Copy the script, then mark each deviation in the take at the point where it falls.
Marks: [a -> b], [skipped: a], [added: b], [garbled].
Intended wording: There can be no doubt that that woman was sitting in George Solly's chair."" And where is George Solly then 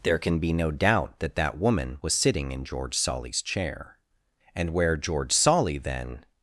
There can be no doubt that that woman was sitting in George Solly's chair."" And where [skipped: is] George Solly then